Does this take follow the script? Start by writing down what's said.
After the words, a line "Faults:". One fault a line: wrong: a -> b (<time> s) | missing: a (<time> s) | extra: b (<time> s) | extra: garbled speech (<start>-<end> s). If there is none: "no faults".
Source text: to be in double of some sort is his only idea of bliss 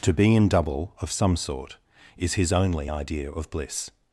to be in double of some sort is his only idea of bliss
Faults:
no faults